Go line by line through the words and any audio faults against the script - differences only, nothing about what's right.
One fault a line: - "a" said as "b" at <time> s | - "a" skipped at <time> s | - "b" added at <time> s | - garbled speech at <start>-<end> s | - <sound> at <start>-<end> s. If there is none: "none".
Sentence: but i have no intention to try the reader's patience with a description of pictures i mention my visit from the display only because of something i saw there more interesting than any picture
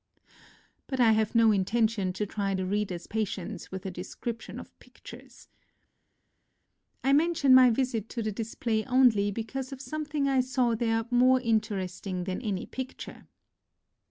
- "from" said as "to" at 8.1 s